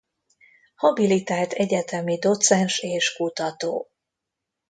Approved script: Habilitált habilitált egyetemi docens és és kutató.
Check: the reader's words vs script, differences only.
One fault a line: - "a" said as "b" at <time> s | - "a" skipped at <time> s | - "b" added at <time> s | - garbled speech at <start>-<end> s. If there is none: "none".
- "habilitált" skipped at 1.5 s
- "és" skipped at 3.1 s